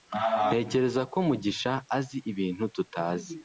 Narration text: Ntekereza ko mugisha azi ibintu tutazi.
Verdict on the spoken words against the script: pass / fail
pass